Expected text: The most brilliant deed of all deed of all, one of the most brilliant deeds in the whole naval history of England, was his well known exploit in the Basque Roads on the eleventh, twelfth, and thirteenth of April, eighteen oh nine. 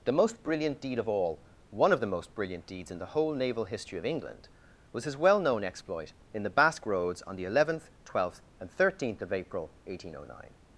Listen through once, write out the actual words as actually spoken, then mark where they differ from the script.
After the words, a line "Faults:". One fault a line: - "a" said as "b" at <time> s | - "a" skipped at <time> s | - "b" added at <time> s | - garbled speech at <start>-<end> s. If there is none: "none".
The most brilliant deed of all, one of the most brilliant deeds in the whole naval history of England, was his well known exploit in the Basque Roads on the eleventh, twelfth, and thirteenth of April, eighteen oh nine.
Faults:
- "deed of all" skipped at 1.4 s